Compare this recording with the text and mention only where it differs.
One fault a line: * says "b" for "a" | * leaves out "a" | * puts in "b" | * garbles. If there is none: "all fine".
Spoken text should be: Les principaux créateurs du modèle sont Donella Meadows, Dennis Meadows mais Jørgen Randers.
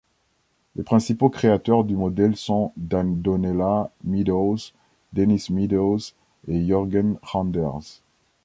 * says "et" for "mais"